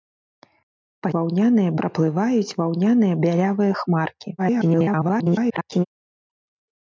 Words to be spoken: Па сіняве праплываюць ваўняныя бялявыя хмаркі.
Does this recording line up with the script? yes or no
no